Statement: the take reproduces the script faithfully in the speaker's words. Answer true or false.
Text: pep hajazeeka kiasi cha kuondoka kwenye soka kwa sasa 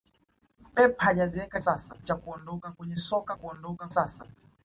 false